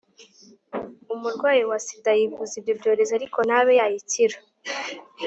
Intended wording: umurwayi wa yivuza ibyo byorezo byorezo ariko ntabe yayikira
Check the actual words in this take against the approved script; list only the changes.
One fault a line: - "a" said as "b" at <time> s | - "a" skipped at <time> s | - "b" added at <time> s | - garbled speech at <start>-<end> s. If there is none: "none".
- "sida" added at 1.9 s
- "byorezo" skipped at 3.1 s